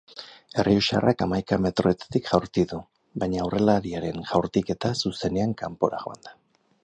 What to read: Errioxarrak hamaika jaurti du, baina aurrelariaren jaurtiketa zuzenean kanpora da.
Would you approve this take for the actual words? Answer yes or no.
no